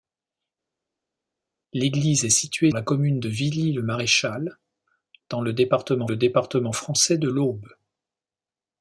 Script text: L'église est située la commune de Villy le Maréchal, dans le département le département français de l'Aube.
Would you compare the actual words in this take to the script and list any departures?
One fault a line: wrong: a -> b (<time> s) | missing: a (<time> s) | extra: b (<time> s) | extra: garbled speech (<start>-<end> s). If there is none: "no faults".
no faults